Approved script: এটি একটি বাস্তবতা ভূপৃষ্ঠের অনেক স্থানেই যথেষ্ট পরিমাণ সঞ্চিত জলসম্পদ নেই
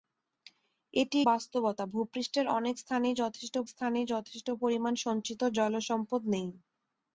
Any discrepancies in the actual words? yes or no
yes